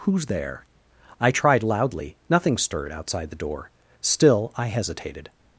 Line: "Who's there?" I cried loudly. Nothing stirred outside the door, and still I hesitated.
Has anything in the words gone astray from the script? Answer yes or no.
yes